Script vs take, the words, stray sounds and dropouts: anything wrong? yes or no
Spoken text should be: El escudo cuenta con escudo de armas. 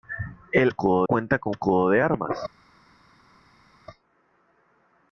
no